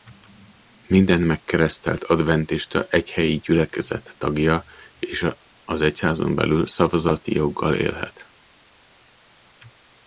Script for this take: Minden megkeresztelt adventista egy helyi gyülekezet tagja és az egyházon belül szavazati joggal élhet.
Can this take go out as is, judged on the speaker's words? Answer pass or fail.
pass